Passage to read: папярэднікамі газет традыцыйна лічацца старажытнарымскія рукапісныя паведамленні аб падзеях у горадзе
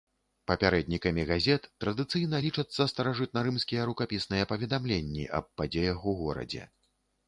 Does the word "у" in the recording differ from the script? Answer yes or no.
no